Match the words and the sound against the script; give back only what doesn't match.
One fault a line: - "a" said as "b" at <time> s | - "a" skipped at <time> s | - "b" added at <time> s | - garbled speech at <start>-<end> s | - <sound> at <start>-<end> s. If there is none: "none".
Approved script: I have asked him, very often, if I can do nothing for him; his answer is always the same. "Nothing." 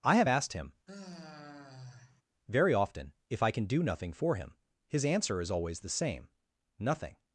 - sigh at 0.9-2.2 s